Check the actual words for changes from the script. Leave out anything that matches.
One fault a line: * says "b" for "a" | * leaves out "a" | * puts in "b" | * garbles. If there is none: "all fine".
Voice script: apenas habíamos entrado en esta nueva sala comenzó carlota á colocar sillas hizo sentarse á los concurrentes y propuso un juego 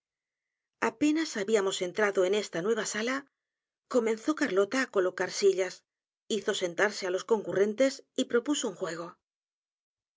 all fine